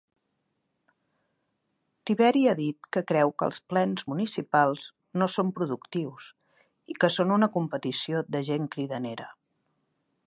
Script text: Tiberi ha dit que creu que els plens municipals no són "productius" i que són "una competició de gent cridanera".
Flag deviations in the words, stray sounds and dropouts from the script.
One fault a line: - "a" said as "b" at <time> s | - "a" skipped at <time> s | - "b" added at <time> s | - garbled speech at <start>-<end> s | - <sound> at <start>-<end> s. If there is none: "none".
none